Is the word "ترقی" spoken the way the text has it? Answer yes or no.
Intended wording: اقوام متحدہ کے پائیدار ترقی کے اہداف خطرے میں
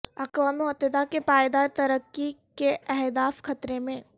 yes